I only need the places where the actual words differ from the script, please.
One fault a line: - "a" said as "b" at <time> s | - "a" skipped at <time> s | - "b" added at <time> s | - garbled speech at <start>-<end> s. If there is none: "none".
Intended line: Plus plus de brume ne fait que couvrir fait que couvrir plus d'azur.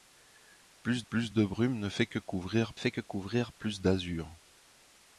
none